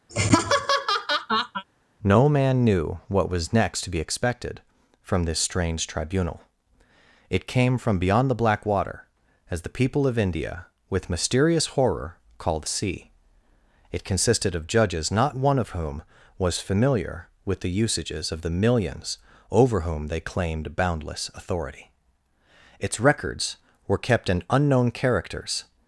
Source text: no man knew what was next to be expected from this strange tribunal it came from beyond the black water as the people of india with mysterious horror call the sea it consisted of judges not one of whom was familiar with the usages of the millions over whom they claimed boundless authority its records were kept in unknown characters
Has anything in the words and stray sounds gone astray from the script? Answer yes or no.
yes